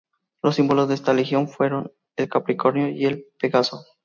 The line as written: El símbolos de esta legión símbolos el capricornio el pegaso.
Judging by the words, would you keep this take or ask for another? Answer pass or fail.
fail